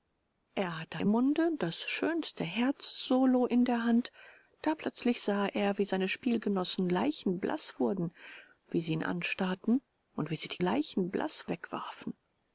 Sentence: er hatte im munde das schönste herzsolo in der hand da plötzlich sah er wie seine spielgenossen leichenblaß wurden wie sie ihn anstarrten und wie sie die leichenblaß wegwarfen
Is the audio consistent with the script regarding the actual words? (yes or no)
yes